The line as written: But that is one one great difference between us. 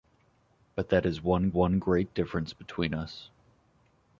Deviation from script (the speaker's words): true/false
false